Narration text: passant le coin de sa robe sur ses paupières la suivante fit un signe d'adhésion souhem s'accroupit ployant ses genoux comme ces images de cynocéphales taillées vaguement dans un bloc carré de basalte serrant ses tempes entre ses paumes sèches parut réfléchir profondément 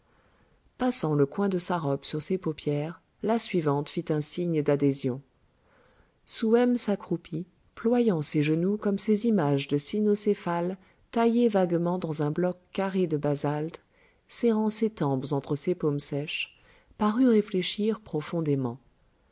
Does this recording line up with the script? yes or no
yes